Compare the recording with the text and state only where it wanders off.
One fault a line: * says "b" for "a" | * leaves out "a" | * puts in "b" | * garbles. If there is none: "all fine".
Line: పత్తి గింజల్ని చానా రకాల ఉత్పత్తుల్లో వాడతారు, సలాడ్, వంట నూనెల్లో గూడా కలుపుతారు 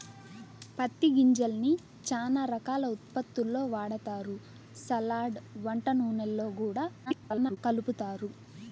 * garbles